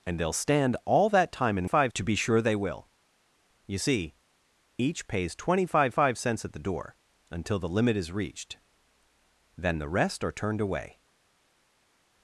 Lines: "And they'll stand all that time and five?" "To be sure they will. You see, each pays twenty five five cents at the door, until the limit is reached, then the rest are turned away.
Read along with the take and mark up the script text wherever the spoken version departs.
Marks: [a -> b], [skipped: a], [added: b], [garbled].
"And they'll stand all that time and five?" "To be sure they will. You see, each pays twenty five five cents at the door, until the limit is reached, then the rest are turned away.